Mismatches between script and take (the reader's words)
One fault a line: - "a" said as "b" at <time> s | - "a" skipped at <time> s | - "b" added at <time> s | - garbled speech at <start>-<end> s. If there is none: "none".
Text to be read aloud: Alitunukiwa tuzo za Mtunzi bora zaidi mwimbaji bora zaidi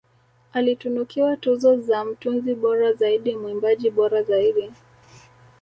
none